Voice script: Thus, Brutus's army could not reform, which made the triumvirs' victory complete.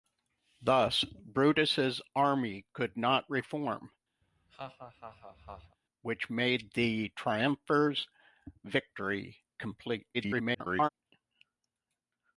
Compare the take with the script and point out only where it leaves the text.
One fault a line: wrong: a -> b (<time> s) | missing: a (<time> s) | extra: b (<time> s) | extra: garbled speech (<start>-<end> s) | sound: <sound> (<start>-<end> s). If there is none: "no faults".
sound: laugh (4.2-5.8 s)
extra: garbled speech (10.1-10.9 s)